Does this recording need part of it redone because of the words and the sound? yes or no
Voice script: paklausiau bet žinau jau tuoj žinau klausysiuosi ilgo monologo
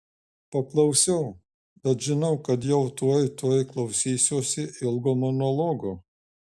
yes